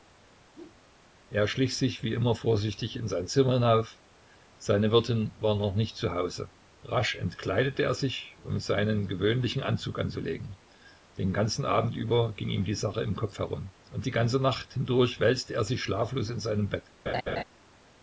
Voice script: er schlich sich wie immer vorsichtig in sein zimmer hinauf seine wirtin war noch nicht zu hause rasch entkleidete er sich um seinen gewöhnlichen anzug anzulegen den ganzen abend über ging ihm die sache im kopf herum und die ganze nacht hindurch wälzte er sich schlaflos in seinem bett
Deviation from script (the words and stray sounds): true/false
true